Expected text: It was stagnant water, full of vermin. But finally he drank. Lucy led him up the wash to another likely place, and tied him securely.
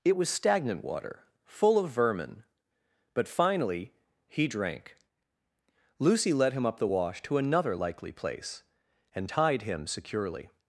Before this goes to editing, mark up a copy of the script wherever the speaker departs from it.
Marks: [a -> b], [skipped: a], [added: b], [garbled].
It was stagnant water, full of vermin. But finally he drank. Lucy led him up the wash to another likely place, and tied him securely.